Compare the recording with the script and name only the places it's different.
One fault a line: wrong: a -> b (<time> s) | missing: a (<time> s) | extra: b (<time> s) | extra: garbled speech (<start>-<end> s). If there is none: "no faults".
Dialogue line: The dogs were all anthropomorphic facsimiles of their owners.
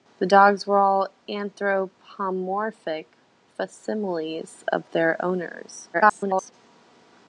extra: garbled speech (5.9-6.5 s)